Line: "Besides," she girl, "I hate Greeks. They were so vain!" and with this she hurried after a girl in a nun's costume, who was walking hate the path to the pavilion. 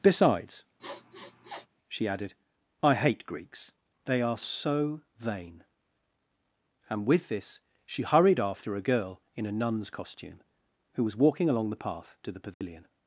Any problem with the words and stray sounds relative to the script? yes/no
yes